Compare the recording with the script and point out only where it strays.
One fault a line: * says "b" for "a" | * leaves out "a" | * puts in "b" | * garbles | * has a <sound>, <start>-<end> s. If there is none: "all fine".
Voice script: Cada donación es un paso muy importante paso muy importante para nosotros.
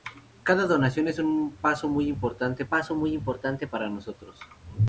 all fine